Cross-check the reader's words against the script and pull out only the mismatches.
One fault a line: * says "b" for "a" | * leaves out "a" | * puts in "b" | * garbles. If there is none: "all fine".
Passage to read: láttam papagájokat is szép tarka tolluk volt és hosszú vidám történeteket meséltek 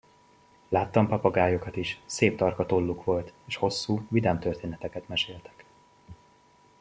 all fine